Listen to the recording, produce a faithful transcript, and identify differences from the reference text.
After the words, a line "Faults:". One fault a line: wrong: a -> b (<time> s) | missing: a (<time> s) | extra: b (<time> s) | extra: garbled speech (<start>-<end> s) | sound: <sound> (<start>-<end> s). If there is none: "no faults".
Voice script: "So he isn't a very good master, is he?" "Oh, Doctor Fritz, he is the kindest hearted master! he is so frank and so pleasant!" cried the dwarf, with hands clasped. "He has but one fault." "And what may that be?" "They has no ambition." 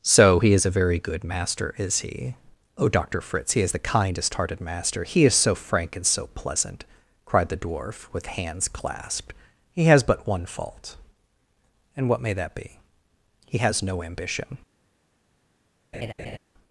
"So he is a very good master, is he?" "Oh, Doctor Fritz, he is the kindest hearted master! he is so frank and so pleasant!" cried the dwarf, with hands clasped. "He has but one fault." "And what may that be?" "He has no ambition."
Faults:
wrong: isn't -> is (0.5 s)
wrong: They -> He (13.5 s)
sound: laugh (15.9-16.4 s)